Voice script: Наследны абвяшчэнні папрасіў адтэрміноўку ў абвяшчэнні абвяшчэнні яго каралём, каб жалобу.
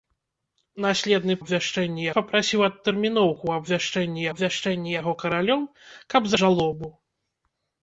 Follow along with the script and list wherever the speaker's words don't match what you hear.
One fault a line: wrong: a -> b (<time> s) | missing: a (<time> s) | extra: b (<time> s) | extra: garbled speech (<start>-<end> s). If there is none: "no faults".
no faults